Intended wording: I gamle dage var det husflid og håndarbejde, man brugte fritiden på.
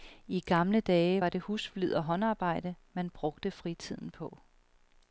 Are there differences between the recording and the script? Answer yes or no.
no